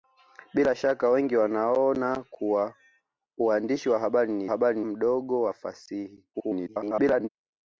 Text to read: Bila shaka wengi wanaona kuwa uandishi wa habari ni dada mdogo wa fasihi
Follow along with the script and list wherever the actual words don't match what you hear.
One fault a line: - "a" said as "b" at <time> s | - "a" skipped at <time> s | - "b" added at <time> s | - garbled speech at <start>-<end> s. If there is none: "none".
- "dada" said as "habari" at 4.5 s
- garbled speech at 6.3-7.3 s